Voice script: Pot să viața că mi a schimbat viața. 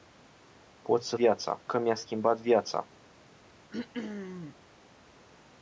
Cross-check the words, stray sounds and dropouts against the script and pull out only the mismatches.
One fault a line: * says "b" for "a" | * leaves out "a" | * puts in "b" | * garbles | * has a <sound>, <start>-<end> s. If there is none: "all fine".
* has a throat clearing, 3.7-4.6 s